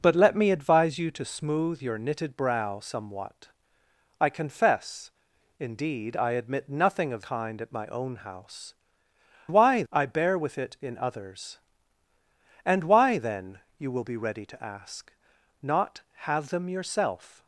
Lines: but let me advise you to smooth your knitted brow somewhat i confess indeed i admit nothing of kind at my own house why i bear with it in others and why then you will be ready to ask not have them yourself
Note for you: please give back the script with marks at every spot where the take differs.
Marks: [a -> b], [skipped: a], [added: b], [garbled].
but let me advise you to smooth your knitted brow somewhat i confess indeed i admit nothing of kind at my own house why i bear with it in others and why then you will be ready to ask not have them yourself